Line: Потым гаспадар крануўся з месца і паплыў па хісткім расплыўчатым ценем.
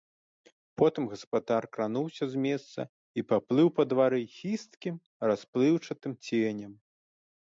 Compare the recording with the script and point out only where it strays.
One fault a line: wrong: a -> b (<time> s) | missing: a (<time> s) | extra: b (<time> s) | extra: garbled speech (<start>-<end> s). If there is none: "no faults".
extra: двары (3.9 s)